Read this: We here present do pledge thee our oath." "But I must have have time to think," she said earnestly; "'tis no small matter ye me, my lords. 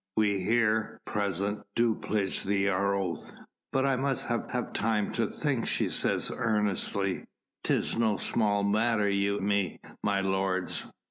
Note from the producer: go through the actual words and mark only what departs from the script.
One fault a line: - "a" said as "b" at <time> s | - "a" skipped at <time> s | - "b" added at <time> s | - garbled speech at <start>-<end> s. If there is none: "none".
none